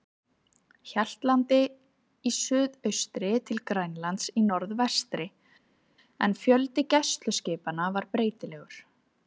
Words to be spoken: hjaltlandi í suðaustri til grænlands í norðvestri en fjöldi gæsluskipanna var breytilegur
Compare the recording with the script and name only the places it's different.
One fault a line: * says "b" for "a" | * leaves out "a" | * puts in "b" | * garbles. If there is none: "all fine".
all fine